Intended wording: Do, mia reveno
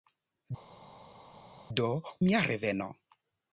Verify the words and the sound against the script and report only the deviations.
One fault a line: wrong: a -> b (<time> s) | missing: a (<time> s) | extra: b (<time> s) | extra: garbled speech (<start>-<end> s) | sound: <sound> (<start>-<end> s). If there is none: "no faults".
no faults